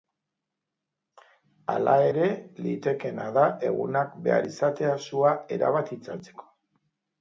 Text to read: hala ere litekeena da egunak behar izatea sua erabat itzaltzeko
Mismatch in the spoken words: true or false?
false